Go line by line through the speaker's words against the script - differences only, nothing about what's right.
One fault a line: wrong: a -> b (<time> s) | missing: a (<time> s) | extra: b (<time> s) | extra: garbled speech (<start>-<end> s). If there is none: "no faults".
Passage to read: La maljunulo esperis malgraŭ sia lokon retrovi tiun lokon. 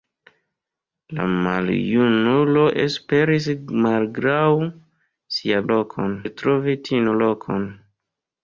no faults